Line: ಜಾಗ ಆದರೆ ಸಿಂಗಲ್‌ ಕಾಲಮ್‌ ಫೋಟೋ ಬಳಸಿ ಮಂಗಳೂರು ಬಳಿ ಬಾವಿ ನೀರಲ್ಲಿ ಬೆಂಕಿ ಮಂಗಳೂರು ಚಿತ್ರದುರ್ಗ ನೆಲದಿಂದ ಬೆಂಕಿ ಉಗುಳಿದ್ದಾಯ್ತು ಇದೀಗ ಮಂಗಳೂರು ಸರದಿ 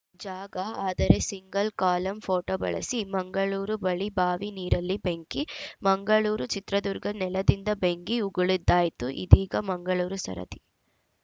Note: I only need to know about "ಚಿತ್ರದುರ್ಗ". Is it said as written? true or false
true